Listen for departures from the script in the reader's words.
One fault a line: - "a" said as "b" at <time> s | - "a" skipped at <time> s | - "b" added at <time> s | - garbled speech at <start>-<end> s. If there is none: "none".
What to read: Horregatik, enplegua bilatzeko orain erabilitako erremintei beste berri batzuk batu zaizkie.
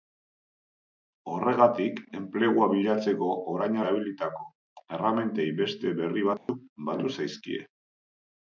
none